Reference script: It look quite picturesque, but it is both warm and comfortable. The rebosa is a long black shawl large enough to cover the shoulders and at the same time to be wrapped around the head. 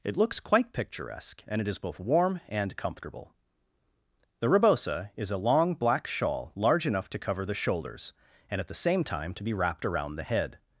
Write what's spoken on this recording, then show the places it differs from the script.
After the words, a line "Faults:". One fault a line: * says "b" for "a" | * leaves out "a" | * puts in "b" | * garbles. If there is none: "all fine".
It looks quite picturesque, and it is both warm and comfortable. The rebosa is a long black shawl large enough to cover the shoulders and at the same time to be wrapped around the head.
Faults:
* says "looks" for "look"
* says "and" for "but"